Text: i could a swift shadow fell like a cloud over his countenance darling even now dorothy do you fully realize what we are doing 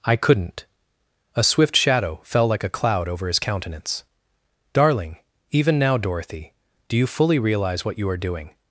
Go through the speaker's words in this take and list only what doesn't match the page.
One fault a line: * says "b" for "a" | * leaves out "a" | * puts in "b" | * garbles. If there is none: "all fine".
* says "couldn't" for "could"
* says "you" for "we"